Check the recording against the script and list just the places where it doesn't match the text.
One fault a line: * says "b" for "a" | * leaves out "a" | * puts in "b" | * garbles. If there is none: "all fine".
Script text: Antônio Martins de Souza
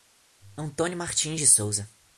all fine